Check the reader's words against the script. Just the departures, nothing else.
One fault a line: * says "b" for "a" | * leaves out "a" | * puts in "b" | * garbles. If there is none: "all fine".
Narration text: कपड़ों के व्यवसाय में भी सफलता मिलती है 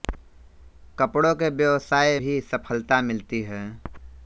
* leaves out "में"